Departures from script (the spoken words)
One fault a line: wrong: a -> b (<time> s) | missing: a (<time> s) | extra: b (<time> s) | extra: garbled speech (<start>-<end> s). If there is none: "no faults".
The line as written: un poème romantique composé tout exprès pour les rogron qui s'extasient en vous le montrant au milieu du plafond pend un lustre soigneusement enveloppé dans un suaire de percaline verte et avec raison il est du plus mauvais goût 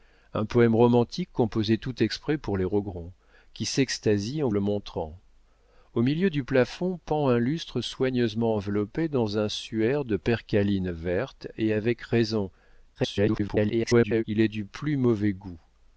missing: vous (4.5 s)
extra: garbled speech (12.9-14.2 s)